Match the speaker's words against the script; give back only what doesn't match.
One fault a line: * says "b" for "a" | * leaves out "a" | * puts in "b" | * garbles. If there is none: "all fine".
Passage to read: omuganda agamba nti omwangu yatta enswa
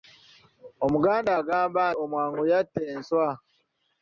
* leaves out "nti"